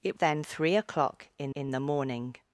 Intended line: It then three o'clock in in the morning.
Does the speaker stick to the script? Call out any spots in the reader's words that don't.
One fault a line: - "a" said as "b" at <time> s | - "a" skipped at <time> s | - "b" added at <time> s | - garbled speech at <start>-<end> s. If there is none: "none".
none